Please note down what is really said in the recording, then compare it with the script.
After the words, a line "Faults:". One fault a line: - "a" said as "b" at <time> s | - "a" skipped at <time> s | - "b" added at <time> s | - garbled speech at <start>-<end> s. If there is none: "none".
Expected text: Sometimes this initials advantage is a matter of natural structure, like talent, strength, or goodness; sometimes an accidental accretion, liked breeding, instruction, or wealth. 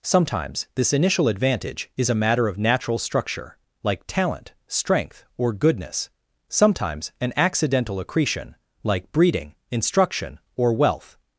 Sometimes this initial advantage is a matter of natural structure, like talent, strength, or goodness; sometimes an accidental accretion, like breeding, instruction, or wealth.
Faults:
- "initials" said as "initial" at 0.9 s
- "liked" said as "like" at 8.8 s